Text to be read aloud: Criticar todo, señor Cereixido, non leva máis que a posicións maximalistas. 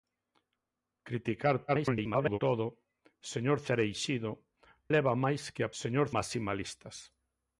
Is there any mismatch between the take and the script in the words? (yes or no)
yes